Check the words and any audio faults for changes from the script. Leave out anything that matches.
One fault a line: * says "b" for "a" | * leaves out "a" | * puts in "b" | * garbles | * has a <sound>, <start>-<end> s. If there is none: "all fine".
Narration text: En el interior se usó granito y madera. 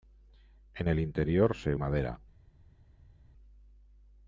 * leaves out "usó granito y"